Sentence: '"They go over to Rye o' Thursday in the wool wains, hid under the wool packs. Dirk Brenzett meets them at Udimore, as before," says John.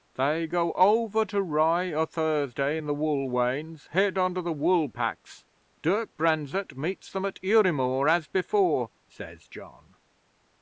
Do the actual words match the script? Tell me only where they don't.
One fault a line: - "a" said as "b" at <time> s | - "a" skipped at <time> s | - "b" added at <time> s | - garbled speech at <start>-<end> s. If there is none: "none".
none